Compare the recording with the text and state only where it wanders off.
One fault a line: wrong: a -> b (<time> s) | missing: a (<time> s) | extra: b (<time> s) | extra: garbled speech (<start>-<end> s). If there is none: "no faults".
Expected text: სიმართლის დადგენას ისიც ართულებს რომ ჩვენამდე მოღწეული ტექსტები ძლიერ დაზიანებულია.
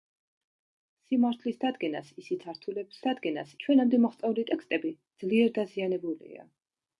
wrong: რომ -> დადგენას (3.1 s)